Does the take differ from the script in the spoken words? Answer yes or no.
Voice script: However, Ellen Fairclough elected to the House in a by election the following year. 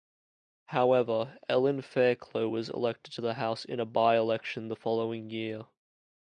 yes